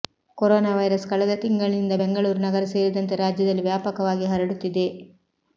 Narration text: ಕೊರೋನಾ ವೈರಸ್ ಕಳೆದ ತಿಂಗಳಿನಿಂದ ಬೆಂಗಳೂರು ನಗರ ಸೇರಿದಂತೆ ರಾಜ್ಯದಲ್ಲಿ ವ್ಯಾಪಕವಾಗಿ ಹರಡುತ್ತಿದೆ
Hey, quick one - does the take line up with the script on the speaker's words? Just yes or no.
yes